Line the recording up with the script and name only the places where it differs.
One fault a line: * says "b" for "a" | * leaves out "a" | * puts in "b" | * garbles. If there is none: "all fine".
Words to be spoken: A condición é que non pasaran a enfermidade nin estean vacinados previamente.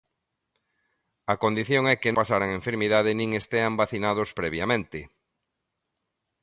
* leaves out "non"